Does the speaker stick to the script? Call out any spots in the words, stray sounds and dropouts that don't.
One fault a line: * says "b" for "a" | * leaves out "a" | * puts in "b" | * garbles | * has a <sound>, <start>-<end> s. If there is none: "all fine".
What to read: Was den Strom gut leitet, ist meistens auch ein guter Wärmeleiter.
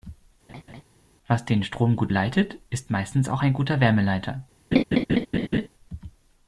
* has a laugh, 0.5-0.8 s
* has a laugh, 4.7-5.7 s